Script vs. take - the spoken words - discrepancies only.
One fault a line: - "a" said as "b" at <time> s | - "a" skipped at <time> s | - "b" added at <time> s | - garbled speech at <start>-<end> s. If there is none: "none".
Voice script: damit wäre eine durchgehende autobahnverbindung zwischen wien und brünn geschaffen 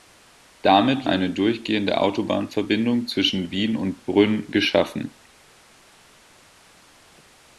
- "wäre" skipped at 1.1 s